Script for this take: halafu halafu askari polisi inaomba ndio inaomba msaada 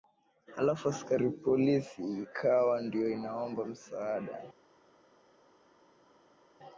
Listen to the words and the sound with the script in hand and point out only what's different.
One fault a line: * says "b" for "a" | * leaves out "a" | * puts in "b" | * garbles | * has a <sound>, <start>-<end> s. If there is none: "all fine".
* leaves out "halafu"
* says "ikawa" for "inaomba"